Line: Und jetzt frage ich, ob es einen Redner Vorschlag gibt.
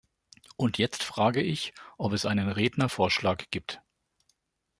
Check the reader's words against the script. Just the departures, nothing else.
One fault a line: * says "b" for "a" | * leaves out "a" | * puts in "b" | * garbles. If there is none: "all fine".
all fine